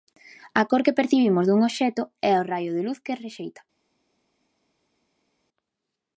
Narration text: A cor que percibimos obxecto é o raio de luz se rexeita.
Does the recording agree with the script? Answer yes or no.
no